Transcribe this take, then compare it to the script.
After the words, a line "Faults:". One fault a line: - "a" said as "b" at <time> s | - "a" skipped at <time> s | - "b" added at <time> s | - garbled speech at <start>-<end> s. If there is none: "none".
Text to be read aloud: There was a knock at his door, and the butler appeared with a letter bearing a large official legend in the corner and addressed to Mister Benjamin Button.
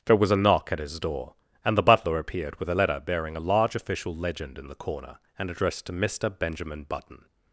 There was a knock at his door, and the butler appeared with a letter bearing a large official legend in the corner and addressed to Mister Benjamin Button.
Faults:
none